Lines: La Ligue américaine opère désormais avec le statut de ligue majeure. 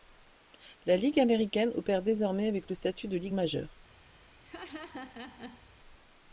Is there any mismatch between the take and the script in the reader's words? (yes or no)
no